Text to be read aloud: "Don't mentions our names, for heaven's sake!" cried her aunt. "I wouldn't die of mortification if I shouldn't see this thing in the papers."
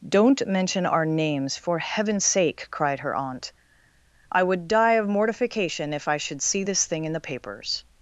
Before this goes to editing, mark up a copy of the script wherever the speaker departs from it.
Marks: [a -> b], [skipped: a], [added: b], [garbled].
"Don't [mentions -> mention] our names, for heaven's sake!" cried her aunt. "I [wouldn't -> would] die of mortification if I [shouldn't -> should] see this thing in the papers."